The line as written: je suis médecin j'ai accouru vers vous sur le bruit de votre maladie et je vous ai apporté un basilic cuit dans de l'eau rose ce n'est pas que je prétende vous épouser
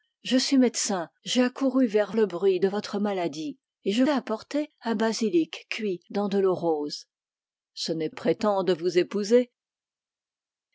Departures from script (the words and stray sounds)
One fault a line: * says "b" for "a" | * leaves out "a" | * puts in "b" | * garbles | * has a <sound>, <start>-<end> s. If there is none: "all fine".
* leaves out "vous sur"
* leaves out "vous"
* leaves out "pas que je"